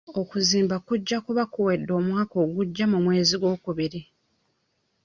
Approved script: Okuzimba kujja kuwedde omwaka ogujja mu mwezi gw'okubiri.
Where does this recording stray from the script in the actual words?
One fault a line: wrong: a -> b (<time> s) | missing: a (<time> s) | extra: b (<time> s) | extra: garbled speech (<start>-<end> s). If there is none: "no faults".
extra: kuba (1.2 s)